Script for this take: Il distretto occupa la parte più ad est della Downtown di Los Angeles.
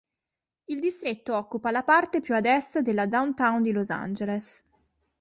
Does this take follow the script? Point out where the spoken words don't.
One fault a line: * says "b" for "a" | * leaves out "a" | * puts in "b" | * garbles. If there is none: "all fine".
all fine